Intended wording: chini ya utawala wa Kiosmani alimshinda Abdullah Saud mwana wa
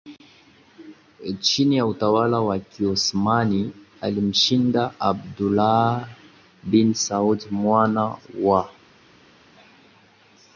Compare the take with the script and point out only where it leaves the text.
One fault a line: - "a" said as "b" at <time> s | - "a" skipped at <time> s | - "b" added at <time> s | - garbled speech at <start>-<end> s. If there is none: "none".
- "bin" added at 6.6 s